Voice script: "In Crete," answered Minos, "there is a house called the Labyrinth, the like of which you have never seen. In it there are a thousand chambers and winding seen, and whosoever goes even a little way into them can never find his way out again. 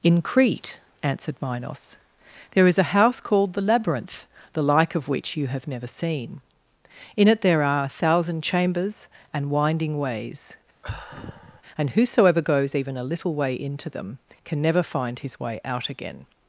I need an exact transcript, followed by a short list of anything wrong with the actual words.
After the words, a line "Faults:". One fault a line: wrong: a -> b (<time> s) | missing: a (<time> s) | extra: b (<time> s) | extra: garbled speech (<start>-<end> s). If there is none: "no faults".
"In Crete," answered Minos, "there is a house called the Labyrinth, the like of which you have never seen. In it there are a thousand chambers and winding ways, and whosoever goes even a little way into them can never find his way out again.
Faults:
wrong: seen -> ways (10.0 s)